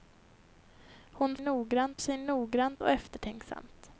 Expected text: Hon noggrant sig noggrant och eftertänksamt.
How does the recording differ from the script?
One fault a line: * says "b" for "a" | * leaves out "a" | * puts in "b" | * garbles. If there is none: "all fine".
all fine